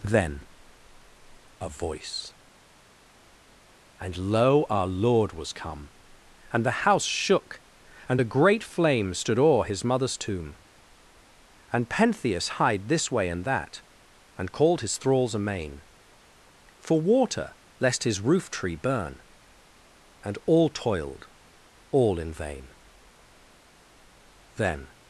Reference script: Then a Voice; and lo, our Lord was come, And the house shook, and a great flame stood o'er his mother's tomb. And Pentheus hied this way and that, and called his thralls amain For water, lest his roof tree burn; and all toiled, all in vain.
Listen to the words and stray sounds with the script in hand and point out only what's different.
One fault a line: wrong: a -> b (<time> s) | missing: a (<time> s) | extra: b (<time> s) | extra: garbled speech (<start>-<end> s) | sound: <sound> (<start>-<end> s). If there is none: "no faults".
extra: Then (24.6 s)